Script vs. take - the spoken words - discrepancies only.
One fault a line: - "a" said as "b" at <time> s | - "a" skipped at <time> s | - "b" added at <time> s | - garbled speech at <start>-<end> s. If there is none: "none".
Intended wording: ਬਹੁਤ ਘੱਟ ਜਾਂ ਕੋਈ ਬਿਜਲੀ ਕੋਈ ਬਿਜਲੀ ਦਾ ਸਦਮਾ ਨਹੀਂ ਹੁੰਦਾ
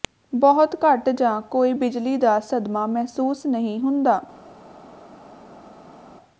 - "ਕੋਈ ਬਿਜਲੀ" skipped at 2.2 s
- "ਮਹਿਸੂਸ" added at 2.9 s